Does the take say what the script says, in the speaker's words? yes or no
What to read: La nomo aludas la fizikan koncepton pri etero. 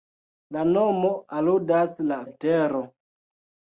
no